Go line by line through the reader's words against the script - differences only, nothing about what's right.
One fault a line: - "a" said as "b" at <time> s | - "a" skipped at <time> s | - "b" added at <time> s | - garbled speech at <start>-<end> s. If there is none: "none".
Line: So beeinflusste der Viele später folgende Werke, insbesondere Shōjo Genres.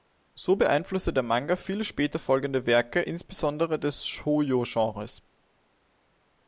- "Manga" added at 1.2 s
- "des" added at 3.8 s